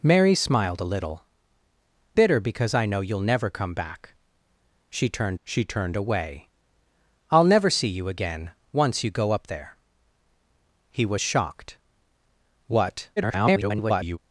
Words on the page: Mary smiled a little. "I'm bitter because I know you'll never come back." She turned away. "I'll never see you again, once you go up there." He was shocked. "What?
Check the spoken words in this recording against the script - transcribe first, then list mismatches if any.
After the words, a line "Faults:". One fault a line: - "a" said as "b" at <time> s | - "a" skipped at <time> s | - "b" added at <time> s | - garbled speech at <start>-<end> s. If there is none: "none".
Mary smiled a little. "Bitter because I know you'll never come back." She turned she turned away. "I'll never see you again, once you go up there." He was shocked. "What? [garbled]
Faults:
- "I'm" skipped at 1.2 s
- "she turned" added at 5.4 s
- garbled speech at 13.2-14.2 s